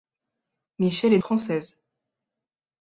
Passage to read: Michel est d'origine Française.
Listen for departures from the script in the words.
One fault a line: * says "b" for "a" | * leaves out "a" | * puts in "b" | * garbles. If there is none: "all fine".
* leaves out "d'origine"